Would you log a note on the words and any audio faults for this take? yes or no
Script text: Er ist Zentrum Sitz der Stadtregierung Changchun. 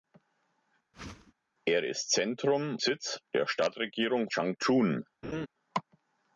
yes